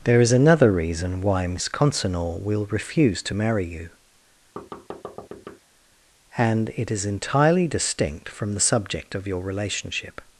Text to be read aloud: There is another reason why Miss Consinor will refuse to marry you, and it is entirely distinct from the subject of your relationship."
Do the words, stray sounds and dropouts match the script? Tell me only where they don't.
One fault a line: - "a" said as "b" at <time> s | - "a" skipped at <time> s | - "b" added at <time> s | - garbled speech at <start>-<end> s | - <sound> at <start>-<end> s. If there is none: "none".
- thud at 4.6-5.6 s